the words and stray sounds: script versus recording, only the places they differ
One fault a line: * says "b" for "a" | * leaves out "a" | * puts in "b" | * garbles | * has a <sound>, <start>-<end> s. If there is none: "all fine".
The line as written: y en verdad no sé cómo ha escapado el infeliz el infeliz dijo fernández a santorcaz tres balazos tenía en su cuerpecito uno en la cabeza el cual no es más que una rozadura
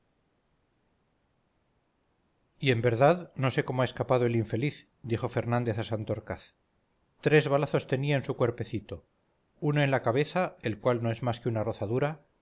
* leaves out "el infeliz"